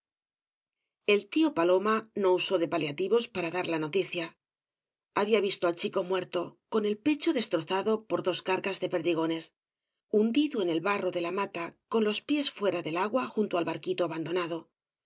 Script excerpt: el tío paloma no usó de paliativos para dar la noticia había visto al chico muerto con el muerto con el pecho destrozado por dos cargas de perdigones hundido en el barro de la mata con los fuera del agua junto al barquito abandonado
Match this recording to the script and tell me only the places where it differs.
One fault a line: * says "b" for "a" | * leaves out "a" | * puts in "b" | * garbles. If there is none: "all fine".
* leaves out "muerto con el"
* puts in "pies"